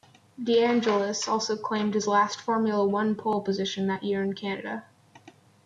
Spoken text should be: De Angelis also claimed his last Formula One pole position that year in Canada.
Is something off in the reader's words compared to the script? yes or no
no